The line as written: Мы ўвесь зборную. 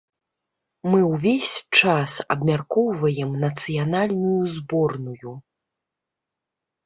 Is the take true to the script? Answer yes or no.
no